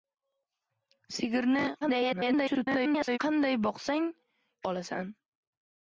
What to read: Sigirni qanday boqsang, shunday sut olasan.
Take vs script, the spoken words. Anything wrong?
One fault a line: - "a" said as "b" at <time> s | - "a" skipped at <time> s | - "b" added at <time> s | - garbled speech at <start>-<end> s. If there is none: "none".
- garbled speech at 1.8-3.2 s
- "shunday sut" skipped at 4.1 s